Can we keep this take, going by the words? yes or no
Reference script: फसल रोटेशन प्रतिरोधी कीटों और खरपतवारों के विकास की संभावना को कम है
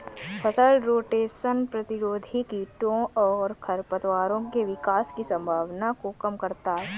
no